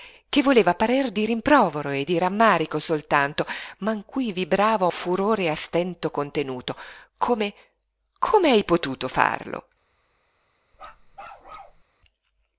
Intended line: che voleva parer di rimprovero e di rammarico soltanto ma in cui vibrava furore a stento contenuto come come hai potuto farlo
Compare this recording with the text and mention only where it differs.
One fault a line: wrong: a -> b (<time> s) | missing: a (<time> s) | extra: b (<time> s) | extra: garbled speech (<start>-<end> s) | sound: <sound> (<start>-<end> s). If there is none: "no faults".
sound: bark (10.7-11.8 s)